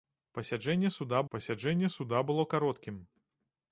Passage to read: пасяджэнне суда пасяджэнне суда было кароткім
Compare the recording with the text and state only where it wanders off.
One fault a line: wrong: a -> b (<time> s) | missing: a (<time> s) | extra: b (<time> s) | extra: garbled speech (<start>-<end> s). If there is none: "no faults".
no faults